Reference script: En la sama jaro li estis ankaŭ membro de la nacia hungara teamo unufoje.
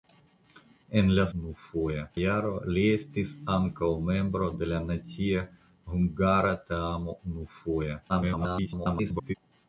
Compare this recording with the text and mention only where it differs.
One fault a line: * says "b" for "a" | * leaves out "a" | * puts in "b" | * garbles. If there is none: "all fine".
* says "unufoje" for "sama"
* garbles